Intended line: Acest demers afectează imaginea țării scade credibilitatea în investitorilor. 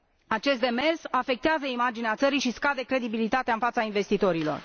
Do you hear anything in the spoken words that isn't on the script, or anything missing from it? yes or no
yes